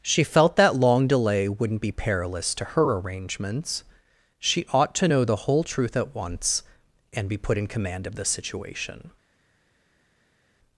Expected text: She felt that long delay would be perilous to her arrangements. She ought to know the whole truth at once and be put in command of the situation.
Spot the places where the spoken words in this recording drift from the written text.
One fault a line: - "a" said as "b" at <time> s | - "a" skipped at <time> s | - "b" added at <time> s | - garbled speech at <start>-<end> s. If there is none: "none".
- "would" said as "wouldn't" at 1.5 s